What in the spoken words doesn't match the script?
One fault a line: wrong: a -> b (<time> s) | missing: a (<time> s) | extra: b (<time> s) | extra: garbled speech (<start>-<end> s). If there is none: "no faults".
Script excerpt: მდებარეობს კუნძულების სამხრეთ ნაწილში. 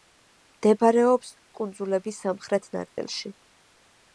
no faults